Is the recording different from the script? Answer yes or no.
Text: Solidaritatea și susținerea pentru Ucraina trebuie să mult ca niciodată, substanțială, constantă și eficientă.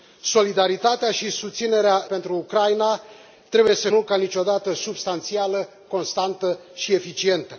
no